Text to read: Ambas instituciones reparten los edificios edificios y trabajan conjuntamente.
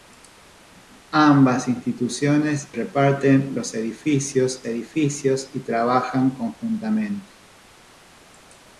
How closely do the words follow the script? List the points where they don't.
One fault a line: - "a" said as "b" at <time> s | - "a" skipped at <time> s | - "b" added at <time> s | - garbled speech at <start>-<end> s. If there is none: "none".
none